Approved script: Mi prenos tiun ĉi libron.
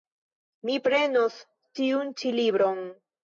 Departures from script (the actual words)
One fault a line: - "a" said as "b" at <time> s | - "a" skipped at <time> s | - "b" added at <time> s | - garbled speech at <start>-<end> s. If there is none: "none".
none